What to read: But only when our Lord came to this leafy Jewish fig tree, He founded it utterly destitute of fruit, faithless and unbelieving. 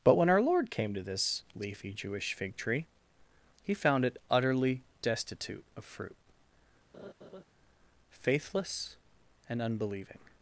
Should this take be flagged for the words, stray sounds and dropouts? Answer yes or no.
yes